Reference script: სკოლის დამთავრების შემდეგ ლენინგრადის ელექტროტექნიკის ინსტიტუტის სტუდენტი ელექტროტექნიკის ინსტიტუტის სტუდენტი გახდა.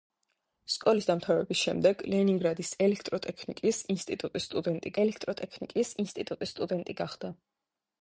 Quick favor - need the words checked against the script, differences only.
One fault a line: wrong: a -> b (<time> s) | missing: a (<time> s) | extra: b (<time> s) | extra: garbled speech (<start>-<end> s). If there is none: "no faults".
no faults